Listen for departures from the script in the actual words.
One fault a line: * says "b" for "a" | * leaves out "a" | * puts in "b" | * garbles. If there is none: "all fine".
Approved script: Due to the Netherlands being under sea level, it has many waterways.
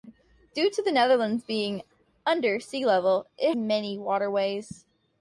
* leaves out "has"